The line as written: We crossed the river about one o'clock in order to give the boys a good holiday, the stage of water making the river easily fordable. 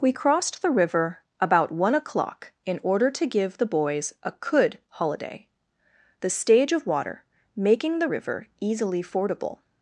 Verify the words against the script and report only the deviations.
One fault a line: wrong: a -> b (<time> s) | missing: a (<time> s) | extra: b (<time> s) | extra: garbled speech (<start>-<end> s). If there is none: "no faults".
wrong: good -> could (4.3 s)